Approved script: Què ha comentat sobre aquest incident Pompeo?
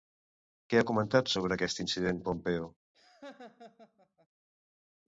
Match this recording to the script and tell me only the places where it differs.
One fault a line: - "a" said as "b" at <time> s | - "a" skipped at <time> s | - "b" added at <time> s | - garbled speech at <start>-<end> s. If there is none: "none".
none